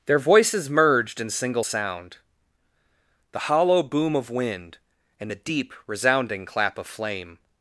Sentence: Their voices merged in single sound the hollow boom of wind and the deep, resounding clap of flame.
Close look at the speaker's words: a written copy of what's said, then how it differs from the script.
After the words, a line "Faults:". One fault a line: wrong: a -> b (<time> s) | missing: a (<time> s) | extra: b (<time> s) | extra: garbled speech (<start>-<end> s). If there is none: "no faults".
Their voices merged in single sound the hollow boom of wind and the deep, resounding clap of flame.
Faults:
no faults